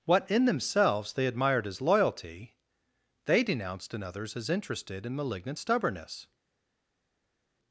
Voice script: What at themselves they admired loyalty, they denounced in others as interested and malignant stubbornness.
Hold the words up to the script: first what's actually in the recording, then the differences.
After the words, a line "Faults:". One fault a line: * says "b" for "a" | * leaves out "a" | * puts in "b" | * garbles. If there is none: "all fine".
What in themselves they admired as loyalty, they denounced in others as interested and malignant stubbornness.
Faults:
* says "in" for "at"
* puts in "as"